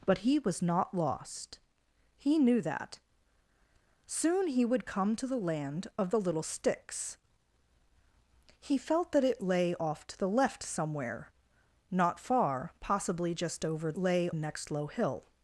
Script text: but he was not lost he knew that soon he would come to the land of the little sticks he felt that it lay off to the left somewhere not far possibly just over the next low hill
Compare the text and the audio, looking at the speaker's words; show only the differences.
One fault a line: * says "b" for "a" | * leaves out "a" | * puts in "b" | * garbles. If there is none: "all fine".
* says "lay" for "the"